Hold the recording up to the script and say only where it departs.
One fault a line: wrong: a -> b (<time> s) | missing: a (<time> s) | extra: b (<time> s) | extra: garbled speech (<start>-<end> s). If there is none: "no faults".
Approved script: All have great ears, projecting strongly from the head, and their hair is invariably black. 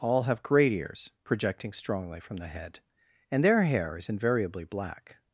no faults